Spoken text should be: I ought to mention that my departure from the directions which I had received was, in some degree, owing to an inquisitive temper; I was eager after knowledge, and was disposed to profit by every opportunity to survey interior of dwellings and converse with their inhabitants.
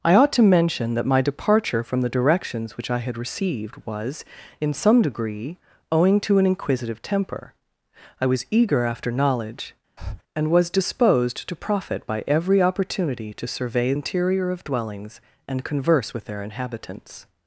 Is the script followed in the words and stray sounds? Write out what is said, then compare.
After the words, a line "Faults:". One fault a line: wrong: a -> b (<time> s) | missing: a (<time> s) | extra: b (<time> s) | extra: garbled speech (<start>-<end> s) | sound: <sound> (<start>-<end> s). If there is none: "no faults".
I ought to mention that my departure from the directions which I had received was, in some degree, owing to an inquisitive temper; I was eager after knowledge, and was disposed to profit by every opportunity to survey interior of dwellings and converse with their inhabitants.
Faults:
sound: breath (10.0-10.2 s)